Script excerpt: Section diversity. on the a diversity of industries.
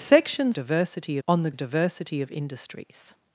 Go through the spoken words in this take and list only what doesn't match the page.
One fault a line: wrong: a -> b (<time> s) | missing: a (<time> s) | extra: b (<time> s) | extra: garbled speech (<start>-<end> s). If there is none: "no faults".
no faults